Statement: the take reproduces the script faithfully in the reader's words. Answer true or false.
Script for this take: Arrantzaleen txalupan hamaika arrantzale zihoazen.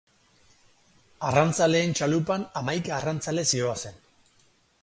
true